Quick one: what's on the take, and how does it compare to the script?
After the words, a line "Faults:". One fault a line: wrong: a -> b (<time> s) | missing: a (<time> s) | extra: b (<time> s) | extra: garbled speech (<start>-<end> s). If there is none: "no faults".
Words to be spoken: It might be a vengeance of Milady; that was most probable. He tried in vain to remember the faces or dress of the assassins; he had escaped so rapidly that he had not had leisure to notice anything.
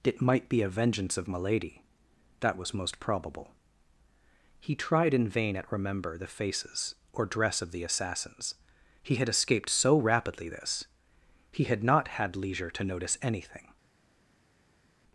It might be a vengeance of Milady; that was most probable. He tried in vain at remember the faces or dress of the assassins; he had escaped so rapidly this he had not had leisure to notice anything.
Faults:
wrong: to -> at (5.5 s)
wrong: that -> this (10.5 s)